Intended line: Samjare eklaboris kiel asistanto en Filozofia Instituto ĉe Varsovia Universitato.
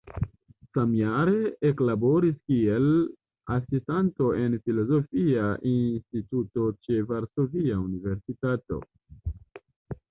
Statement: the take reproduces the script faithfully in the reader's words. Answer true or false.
true